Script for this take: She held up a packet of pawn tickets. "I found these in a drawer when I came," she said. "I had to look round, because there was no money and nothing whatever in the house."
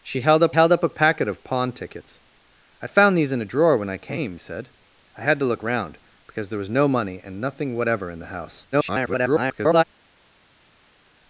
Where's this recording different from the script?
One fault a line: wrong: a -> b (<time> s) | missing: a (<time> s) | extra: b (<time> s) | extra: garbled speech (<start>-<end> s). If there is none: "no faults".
extra: held up (0.5 s)
missing: she (4.4 s)
extra: garbled speech (8.7-9.8 s)